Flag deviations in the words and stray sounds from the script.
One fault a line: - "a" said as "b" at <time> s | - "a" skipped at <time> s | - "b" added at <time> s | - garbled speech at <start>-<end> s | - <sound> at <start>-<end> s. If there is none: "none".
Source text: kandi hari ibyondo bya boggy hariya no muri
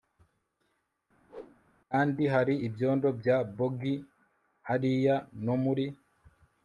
- whoosh at 1.3-1.6 s